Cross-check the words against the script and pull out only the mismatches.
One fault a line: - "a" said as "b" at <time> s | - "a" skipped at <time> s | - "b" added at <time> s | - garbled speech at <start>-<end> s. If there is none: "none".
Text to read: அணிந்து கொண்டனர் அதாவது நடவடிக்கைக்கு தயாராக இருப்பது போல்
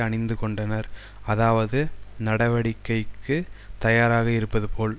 none